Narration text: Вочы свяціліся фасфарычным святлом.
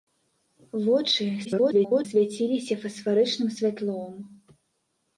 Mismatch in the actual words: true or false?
true